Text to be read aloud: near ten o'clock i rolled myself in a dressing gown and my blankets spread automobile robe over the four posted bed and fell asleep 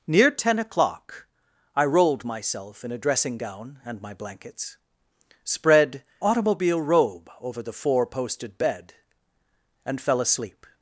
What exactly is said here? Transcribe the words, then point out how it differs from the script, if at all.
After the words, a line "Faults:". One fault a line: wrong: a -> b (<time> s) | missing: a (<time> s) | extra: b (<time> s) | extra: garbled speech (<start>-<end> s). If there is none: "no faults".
near ten o'clock i rolled myself in a dressing gown and my blankets spread automobile robe over the four posted bed and fell asleep
Faults:
no faults